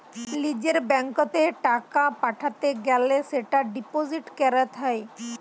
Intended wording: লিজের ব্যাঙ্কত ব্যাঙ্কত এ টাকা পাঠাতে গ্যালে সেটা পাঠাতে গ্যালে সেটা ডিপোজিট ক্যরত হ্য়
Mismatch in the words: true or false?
true